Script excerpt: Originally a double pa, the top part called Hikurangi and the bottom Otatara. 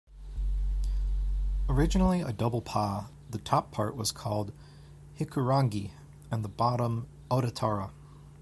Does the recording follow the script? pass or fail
fail